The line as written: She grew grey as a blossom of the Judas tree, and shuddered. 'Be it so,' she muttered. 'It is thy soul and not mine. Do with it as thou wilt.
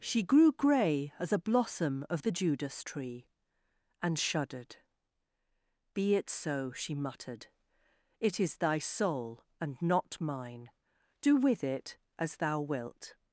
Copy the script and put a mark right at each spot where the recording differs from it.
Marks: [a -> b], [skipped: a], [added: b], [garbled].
She grew grey as a blossom of the Judas tree, and shuddered. 'Be it so,' she muttered. 'It is thy soul and not mine. Do with it as thou wilt.